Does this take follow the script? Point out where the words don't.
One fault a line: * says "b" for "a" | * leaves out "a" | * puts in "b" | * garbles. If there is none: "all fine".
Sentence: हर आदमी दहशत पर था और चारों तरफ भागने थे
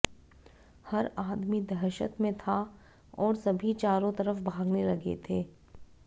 * says "में" for "पर"
* puts in "सभी"
* puts in "लगे"